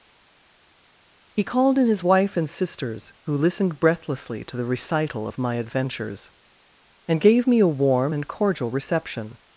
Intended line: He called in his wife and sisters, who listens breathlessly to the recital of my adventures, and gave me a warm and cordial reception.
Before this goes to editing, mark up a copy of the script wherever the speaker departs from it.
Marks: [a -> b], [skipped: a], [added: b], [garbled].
He called in his wife and sisters, who [listens -> listened] breathlessly to the recital of my adventures, and gave me a warm and cordial reception.